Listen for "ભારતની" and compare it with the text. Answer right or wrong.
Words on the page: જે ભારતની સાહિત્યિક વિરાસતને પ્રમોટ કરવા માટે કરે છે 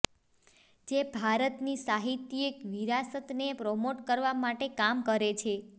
right